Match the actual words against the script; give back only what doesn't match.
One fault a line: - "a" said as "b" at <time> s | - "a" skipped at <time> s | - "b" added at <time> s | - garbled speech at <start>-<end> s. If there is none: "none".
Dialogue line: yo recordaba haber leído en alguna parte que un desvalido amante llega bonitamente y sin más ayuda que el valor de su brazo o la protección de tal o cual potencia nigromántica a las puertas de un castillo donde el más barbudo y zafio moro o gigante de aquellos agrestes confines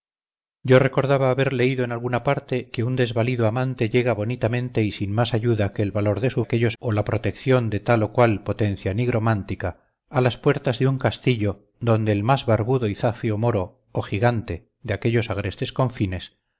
- "brazo" said as "aquellos" at 6.4 s